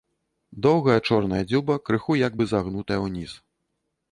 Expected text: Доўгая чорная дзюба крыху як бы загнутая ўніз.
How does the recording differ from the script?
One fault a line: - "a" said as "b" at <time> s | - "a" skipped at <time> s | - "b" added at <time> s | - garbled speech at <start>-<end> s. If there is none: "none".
none